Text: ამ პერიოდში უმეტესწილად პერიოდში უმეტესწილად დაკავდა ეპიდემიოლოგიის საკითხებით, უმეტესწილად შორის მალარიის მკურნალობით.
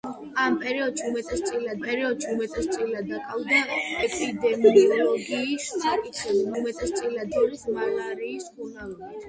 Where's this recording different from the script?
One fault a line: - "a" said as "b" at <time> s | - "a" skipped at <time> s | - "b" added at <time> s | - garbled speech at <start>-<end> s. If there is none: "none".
none